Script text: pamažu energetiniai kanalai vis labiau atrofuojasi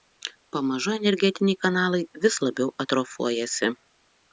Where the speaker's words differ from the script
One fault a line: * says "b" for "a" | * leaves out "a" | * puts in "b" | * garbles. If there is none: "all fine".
all fine